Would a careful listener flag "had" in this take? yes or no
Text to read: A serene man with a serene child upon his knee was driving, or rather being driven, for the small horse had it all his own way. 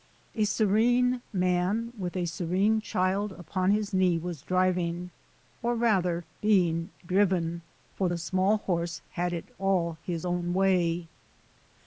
no